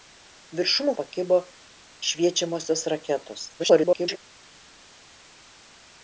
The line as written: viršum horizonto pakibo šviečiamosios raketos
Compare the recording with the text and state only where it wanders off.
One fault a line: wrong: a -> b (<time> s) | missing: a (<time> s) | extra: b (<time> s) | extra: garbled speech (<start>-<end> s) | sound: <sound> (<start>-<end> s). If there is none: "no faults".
missing: horizonto (0.9 s)
extra: garbled speech (3.6-4.2 s)